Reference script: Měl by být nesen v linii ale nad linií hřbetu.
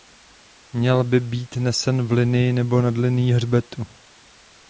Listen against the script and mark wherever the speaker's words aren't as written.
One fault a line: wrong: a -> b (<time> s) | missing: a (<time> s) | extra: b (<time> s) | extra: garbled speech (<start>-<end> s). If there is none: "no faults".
wrong: ale -> nebo (2.5 s)